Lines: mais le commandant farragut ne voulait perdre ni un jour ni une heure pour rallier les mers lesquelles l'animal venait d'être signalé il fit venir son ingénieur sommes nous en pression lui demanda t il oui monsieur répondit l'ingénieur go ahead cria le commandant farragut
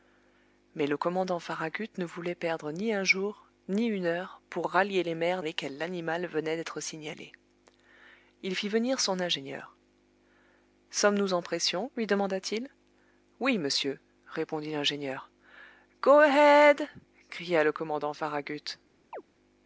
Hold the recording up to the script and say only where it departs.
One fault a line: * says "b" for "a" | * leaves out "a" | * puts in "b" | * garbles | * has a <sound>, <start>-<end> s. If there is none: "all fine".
* has a chirp, 19.1-19.2 s